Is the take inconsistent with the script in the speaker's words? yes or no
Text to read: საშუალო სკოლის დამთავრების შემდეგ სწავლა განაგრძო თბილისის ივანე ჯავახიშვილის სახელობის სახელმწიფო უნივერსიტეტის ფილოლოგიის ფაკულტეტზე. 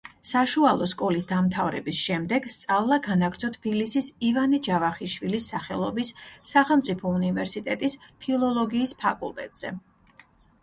no